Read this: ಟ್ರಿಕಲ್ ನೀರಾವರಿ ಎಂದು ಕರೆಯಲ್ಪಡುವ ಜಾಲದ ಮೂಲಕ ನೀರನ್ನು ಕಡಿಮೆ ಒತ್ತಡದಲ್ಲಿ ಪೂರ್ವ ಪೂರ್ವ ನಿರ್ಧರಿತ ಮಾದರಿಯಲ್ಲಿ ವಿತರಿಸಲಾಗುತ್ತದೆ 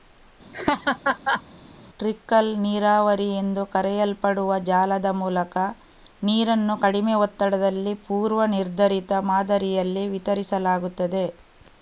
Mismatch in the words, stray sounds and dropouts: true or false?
true